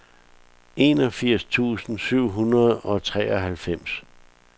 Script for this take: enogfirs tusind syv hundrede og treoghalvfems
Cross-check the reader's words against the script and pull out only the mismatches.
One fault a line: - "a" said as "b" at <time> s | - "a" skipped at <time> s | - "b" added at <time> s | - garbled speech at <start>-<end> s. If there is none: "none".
none